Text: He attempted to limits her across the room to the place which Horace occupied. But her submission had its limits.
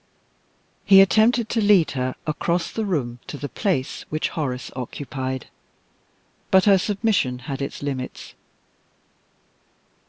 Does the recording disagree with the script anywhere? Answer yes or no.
yes